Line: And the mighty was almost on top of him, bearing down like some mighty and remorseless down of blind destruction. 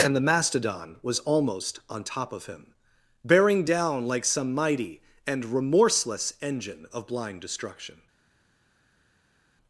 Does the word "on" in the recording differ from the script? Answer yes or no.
no